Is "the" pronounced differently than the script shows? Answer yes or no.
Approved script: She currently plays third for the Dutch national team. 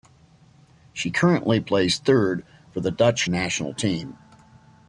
no